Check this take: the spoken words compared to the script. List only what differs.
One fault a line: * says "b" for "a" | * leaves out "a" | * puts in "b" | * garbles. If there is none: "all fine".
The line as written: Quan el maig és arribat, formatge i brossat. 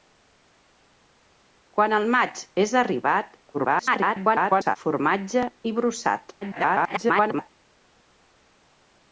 * garbles
* garbles